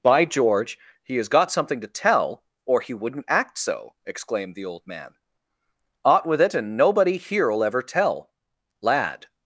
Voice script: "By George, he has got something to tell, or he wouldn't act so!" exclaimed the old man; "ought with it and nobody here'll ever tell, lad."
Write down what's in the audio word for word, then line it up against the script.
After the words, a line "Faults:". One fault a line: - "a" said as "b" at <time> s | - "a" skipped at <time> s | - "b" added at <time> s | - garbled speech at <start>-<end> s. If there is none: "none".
"By George, he has got something to tell, or he wouldn't act so!" exclaimed the old man; "ought with it and nobody here'll ever tell, lad."
Faults:
none